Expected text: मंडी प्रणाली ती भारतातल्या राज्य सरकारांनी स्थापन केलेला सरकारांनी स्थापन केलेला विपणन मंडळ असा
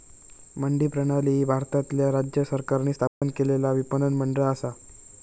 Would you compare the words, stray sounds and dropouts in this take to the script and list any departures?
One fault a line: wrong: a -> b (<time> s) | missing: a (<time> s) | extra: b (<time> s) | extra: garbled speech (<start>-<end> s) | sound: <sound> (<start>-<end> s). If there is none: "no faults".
wrong: ती -> ही (1.3 s)
sound: dropout (3.1-3.2 s)
missing: सरकारांनी स्थापन केलेला (3.7 s)